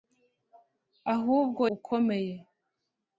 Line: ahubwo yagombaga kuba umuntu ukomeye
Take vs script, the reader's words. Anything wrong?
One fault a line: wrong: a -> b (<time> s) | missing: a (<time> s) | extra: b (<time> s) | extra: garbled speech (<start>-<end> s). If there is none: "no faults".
missing: yagombaga kuba umuntu (1.6 s)